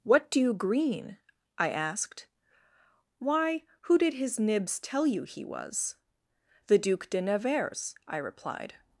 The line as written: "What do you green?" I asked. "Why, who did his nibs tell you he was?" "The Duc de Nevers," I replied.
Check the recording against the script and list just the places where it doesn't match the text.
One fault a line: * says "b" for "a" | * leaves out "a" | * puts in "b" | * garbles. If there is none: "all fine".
all fine